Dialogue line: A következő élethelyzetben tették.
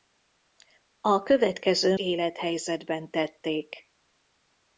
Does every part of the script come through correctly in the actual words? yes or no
yes